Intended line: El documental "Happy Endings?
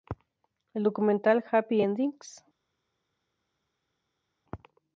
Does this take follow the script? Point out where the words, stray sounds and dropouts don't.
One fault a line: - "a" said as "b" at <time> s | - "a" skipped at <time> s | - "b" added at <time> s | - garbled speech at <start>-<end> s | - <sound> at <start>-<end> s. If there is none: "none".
none